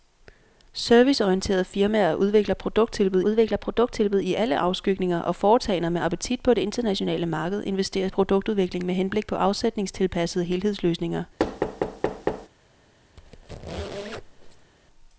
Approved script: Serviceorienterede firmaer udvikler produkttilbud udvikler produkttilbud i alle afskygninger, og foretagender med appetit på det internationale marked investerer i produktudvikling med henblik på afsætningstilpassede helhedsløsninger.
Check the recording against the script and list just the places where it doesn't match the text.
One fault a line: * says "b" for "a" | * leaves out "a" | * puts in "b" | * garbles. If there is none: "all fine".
all fine